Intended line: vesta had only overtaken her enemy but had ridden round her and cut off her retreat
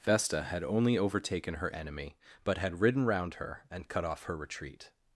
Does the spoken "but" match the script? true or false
true